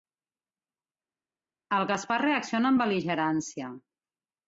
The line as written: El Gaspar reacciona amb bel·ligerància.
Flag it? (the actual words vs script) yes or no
no